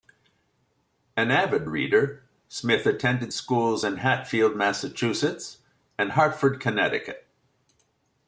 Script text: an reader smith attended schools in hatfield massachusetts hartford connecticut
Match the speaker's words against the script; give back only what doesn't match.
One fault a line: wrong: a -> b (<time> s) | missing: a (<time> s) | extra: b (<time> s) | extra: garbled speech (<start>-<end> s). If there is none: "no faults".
extra: avid (1.3 s)
extra: and (6.0 s)